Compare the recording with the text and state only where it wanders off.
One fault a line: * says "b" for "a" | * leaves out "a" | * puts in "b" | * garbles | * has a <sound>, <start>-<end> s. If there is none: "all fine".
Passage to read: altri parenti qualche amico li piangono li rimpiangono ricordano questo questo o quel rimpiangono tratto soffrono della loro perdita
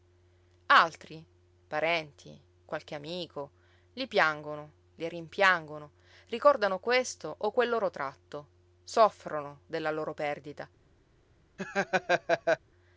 * leaves out "questo"
* says "loro" for "rimpiangono"
* has a laugh, 11.6-12.6 s